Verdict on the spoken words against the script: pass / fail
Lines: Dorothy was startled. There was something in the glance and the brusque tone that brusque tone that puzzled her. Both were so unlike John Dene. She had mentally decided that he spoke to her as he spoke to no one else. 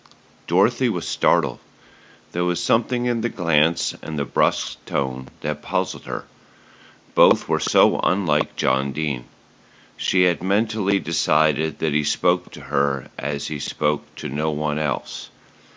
fail